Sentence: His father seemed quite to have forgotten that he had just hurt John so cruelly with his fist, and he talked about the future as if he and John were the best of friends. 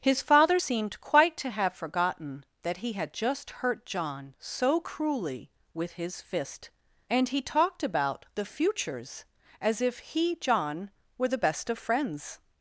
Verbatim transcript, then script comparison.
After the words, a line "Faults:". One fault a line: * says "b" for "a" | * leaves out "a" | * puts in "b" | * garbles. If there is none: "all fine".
His father seemed quite to have forgotten that he had just hurt John so cruelly with his fist, and he talked about the futures as if he John were the best of friends.
Faults:
* says "futures" for "future"
* leaves out "and"